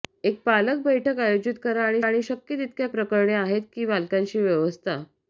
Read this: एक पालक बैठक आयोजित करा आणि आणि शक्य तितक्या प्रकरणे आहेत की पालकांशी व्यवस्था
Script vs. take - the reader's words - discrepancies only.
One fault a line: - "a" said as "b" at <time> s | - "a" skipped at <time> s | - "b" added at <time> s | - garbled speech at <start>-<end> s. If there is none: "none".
none